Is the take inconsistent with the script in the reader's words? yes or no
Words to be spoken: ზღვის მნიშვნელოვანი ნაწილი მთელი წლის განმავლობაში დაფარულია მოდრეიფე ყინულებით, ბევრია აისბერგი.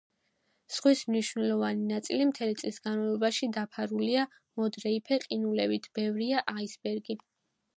no